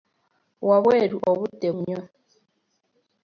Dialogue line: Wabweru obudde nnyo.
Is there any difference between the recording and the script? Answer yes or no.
no